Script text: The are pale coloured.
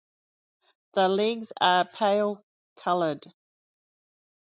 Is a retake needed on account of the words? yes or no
yes